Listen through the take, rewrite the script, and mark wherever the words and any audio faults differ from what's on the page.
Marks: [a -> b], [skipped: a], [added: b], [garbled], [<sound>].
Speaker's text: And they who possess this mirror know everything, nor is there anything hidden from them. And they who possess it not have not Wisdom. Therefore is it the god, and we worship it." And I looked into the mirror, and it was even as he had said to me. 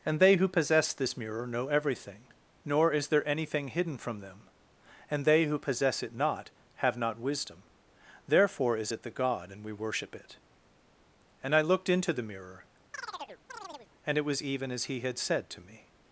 And they who possess this mirror know everything, nor is there anything hidden from them. And they who possess it not have not Wisdom. Therefore is it the god, and we worship it." And I looked into the mirror, [chirp] and it was even as he had said to me.